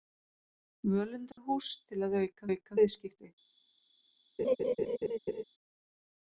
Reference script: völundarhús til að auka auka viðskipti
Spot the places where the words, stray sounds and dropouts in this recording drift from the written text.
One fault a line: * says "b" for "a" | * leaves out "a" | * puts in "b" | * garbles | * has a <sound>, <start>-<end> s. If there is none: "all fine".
* has a dropout, 1.3-1.4 s
* has a laugh, 4.4-5.4 s